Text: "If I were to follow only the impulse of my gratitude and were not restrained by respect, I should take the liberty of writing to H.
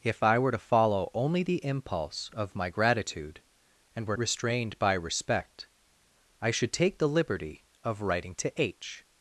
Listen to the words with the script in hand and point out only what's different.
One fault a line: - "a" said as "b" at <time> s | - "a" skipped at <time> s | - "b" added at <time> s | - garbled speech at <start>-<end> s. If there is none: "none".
- "not" skipped at 4.2 s